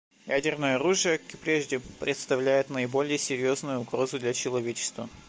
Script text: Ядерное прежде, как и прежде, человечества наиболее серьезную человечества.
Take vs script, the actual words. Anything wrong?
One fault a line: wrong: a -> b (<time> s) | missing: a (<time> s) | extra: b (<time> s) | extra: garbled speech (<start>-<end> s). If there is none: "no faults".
wrong: прежде -> оружие (0.8 s)
wrong: человечества -> представляет (2.0 s)
extra: угрозу для (3.8 s)